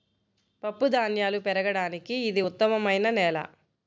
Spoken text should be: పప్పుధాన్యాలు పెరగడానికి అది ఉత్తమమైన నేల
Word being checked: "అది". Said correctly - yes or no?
no